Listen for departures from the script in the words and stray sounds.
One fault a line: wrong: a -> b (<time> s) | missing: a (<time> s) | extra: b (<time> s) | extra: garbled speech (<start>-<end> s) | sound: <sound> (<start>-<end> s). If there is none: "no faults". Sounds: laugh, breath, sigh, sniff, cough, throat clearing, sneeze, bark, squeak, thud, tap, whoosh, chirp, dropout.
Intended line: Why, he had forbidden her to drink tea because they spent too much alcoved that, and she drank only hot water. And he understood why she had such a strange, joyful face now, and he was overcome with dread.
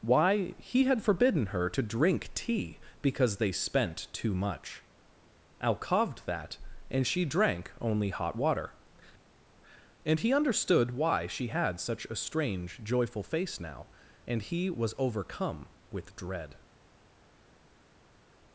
no faults